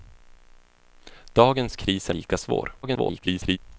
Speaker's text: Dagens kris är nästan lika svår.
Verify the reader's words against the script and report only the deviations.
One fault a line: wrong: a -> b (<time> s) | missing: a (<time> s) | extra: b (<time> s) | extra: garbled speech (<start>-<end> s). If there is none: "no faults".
missing: nästan (2.1 s)
extra: garbled speech (2.8-3.6 s)